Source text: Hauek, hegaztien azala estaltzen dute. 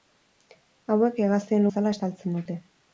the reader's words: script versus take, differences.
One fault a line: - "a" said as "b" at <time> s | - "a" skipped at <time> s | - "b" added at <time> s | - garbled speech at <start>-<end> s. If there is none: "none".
none